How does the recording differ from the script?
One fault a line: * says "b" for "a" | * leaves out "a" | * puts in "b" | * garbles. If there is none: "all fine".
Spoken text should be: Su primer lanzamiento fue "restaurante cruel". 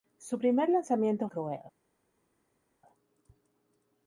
* leaves out "fue restaurante"